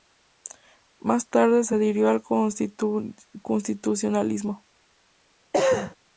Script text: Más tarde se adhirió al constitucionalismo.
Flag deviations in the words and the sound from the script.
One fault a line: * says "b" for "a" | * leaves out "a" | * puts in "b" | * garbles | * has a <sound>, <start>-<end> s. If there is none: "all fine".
* has a cough, 5.5-6.0 s